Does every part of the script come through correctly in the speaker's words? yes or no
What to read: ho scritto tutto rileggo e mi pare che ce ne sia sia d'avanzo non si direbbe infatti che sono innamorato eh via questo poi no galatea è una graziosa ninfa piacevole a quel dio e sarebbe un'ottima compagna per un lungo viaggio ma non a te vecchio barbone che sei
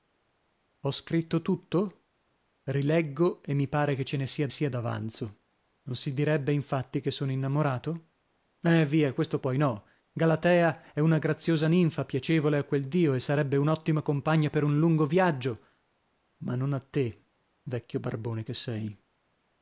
yes